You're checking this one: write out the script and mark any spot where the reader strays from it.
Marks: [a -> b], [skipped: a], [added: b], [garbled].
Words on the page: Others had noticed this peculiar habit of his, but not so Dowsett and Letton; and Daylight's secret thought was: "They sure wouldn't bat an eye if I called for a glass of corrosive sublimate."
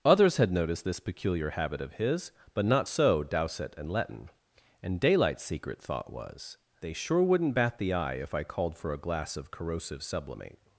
Others had noticed this peculiar habit of his, but not so Dowsett and Letton; and Daylight's secret thought was: "They sure wouldn't bat [an -> the] eye if I called for a glass of corrosive sublimate."